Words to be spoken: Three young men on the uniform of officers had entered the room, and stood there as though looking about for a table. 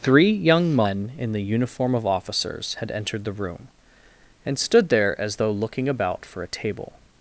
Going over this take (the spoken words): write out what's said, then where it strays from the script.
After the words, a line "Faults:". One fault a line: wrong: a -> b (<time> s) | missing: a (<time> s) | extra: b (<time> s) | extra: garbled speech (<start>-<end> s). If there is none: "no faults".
Three young men in the uniform of officers had entered the room, and stood there as though looking about for a table.
Faults:
wrong: on -> in (1.2 s)